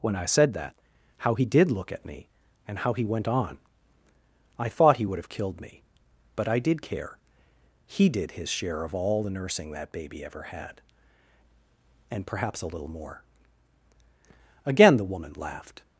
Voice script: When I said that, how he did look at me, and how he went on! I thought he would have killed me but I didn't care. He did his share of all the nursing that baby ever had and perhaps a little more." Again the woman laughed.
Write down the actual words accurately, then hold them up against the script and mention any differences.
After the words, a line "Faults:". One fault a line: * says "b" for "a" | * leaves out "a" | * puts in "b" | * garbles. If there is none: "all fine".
When I said that, how he did look at me, and how he went on! I thought he would have killed me but I did care. He did his share of all the nursing that baby ever had and perhaps a little more." Again the woman laughed.
Faults:
* says "did" for "didn't"